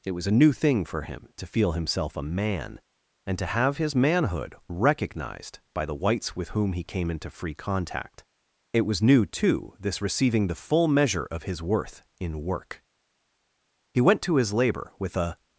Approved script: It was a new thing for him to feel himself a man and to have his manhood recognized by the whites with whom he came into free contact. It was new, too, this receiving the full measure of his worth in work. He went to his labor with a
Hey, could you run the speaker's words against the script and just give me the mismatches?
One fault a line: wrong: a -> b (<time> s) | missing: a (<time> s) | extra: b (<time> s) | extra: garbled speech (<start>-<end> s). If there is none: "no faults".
no faults